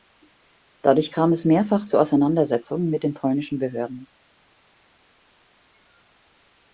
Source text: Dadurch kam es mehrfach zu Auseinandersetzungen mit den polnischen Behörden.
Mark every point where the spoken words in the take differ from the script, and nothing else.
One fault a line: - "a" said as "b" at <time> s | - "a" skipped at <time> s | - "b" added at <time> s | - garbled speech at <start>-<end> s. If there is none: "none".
none